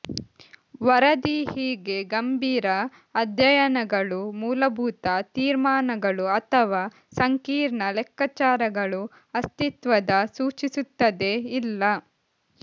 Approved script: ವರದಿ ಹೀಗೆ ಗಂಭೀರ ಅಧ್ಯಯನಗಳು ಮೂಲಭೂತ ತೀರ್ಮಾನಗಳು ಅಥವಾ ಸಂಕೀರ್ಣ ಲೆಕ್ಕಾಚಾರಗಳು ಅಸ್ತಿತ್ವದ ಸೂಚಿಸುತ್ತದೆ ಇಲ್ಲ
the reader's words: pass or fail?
pass